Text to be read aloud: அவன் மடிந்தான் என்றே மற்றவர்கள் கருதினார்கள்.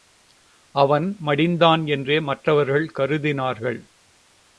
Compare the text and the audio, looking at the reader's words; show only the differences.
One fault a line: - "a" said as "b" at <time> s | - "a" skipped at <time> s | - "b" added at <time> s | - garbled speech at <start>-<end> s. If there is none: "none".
none